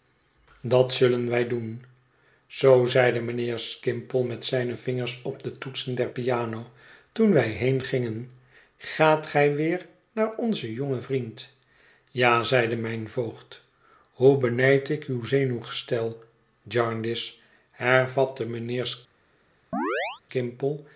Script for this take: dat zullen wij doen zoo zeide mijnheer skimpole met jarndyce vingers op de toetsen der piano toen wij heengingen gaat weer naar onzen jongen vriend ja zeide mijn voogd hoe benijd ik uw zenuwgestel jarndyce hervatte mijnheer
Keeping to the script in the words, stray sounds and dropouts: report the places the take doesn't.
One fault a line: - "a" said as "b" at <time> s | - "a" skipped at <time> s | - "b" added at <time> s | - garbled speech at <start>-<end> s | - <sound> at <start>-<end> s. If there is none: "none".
- "jarndyce" said as "zijne" at 4.5 s
- "gij" added at 9.3 s
- chirp at 19.7-20.2 s